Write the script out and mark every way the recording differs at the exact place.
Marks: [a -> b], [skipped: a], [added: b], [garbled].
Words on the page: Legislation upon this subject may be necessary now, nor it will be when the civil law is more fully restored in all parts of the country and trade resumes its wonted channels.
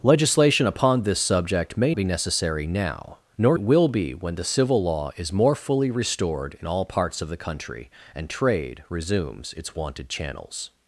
Legislation upon this subject may be necessary now, nor it will be when the civil law is more fully restored in all parts of the country and trade resumes its wonted channels.